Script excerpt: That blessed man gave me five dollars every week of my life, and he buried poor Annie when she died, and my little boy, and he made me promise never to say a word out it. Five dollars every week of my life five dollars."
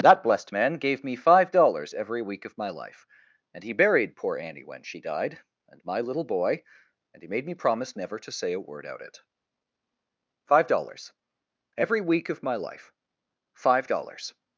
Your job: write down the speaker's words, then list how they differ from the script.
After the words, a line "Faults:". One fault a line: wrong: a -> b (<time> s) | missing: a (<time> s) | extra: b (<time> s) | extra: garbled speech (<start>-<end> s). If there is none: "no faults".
That blessed man gave me five dollars every week of my life, and he buried poor Annie when she died, and my little boy, and he made me promise never to say a word out it. Five dollars every week of my life five dollars."
Faults:
no faults